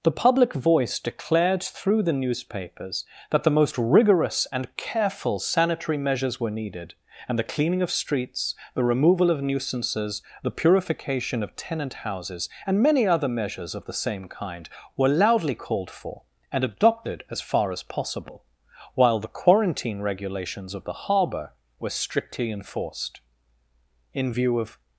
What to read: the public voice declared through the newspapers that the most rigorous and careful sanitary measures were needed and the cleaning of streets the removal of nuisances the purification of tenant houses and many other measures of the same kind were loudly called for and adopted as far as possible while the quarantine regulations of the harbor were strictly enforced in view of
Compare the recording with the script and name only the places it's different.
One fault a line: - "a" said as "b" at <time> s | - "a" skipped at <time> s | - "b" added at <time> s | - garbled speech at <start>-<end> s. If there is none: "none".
none